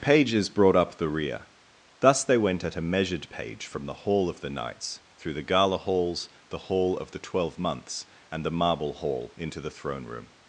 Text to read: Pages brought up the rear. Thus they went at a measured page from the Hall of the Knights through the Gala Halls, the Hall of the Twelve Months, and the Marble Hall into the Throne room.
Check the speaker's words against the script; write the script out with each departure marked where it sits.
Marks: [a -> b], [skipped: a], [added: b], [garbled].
Pages brought up the rear. Thus they went at a measured page from the Hall of the Knights through the Gala Halls, the Hall of the Twelve Months, and the Marble Hall into the Throne room.